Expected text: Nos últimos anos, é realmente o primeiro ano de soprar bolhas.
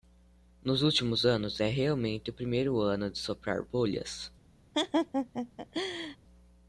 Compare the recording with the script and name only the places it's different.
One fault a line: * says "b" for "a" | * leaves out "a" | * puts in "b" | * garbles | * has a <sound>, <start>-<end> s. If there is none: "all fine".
* has a laugh, 4.7-6.2 s